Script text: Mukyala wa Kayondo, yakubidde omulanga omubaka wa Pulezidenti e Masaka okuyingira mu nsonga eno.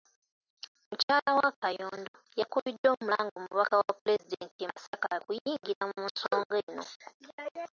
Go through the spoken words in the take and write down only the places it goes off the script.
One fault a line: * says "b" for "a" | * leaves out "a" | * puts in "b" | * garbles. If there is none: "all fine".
all fine